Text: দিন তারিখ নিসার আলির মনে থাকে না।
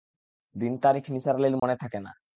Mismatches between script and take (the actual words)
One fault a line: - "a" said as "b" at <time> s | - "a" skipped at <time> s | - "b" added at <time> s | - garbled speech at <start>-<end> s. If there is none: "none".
none